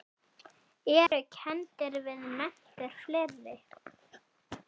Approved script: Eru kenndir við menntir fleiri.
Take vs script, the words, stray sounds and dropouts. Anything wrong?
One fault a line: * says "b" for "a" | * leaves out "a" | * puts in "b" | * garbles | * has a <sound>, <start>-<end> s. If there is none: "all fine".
* has a dropout, 1.1-1.1 s